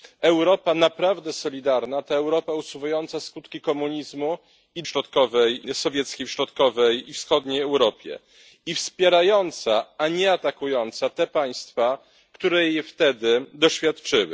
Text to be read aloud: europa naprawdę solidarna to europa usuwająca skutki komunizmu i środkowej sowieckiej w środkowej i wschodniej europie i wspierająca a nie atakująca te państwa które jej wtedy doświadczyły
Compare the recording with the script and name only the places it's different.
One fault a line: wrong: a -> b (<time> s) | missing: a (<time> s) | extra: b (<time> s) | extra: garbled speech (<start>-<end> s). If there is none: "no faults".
no faults